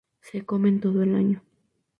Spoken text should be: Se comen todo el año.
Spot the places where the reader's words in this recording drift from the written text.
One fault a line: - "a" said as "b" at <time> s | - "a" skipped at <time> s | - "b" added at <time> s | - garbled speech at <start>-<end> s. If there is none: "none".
none